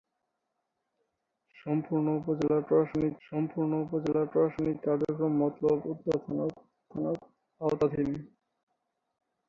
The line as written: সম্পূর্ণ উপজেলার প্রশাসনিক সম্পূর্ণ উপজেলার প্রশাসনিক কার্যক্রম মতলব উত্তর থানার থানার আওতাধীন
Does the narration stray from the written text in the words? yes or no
no